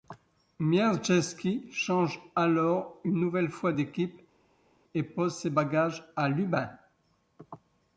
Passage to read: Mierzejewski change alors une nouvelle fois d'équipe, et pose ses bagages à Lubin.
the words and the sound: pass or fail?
pass